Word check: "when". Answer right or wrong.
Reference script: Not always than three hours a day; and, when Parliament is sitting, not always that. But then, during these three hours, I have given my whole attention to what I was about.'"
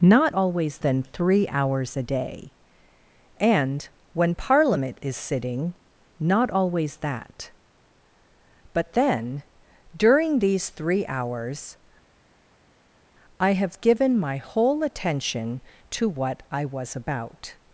right